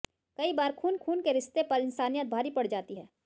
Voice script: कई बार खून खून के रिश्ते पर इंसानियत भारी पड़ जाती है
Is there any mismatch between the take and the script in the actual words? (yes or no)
no